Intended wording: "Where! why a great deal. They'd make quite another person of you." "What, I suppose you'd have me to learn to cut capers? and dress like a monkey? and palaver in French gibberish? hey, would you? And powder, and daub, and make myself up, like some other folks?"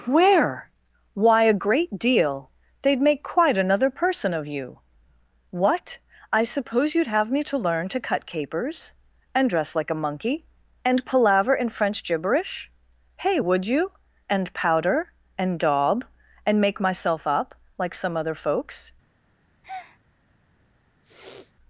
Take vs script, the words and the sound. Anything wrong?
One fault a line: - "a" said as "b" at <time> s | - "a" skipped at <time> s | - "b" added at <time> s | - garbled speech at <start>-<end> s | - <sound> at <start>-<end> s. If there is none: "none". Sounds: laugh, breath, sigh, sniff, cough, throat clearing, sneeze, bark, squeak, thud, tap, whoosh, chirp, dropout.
- breath at 19.6-20.0 s
- sniff at 21.0-21.5 s